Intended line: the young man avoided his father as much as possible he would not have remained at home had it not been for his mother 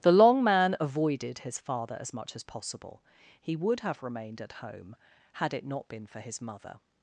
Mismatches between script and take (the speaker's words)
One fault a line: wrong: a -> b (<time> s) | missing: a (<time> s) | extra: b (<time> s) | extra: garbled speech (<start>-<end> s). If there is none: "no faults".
wrong: young -> long (0.1 s)
missing: not (3.8 s)